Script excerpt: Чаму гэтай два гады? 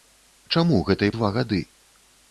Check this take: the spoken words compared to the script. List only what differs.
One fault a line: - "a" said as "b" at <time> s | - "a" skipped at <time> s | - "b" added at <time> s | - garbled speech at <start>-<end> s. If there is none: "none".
none